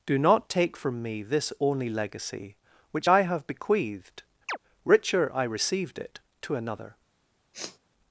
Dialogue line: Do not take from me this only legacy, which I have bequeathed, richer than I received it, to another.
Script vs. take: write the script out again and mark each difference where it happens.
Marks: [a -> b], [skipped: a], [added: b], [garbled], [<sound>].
Do not take from me this only legacy, which I have bequeathed, [chirp] richer [skipped: than] I received it, to another. [sniff]